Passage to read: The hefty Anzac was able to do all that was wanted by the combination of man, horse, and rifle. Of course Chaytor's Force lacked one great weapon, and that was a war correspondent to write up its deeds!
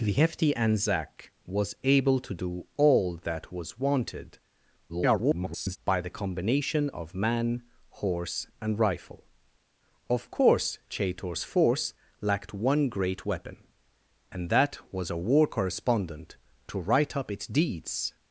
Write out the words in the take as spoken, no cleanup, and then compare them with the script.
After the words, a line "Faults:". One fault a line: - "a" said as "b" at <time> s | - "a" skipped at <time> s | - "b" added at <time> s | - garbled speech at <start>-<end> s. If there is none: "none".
The hefty Anzac was able to do all that was wanted [garbled] by the combination of man, horse, and rifle. Of course Chaytor's Force lacked one great weapon, and that was a war correspondent to write up its deeds!
Faults:
- garbled speech at 4.9-5.8 s